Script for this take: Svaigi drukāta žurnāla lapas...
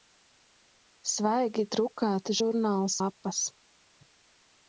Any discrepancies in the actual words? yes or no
no